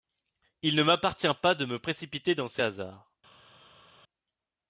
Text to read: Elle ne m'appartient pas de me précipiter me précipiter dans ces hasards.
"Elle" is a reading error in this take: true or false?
true